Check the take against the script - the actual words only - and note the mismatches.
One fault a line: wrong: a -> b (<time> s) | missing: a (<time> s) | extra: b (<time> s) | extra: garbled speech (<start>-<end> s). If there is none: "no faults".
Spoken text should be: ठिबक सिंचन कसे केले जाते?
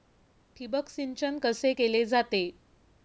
no faults